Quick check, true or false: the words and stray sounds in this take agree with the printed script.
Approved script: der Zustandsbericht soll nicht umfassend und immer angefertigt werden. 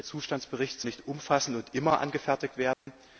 false